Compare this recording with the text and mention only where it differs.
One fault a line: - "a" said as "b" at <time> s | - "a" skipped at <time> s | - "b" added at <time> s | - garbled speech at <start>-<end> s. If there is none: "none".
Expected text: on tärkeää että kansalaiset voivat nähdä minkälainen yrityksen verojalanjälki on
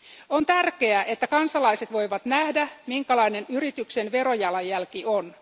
none